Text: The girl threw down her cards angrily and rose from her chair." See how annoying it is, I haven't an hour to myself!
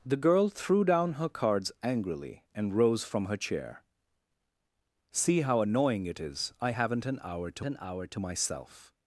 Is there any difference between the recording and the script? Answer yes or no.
yes